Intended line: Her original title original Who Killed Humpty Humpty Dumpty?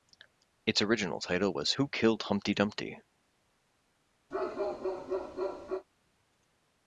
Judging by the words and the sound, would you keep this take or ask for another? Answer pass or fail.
fail